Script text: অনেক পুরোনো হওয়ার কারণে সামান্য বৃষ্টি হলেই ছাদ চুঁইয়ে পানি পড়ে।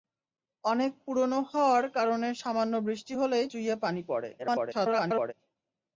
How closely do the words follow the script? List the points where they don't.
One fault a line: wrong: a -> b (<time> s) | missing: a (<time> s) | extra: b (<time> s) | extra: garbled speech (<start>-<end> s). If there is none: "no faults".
missing: ছাদ (3.5 s)
extra: garbled speech (4.4-5.3 s)